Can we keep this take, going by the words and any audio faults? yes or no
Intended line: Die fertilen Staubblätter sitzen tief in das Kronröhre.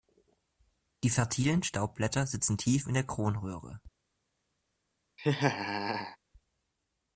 no